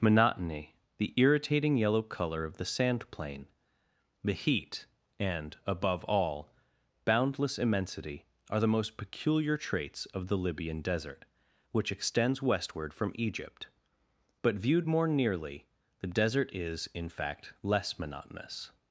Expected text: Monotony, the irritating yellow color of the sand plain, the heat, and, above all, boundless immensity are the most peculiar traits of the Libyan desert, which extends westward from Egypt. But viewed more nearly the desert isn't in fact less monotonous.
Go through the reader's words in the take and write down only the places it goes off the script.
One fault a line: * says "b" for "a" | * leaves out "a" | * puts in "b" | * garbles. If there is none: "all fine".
* says "is" for "isn't"